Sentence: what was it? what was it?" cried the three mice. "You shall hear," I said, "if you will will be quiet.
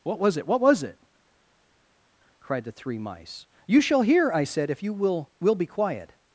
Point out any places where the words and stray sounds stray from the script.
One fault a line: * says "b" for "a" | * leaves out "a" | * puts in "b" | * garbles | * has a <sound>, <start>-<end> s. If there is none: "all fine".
all fine